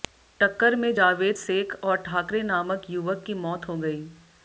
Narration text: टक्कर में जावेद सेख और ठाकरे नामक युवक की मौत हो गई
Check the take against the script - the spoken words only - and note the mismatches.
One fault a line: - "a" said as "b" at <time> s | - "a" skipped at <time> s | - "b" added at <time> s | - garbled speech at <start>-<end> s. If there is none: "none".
none